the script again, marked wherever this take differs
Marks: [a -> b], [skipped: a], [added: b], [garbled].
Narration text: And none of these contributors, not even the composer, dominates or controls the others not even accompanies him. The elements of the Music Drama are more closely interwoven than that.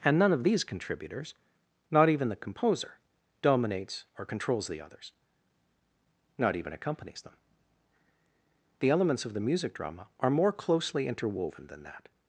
And none of these contributors, not even the composer, dominates or controls the others not even accompanies [him. -> them] The elements of the Music Drama are more closely interwoven than that.